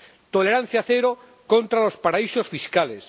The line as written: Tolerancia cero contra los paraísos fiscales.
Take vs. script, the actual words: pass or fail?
pass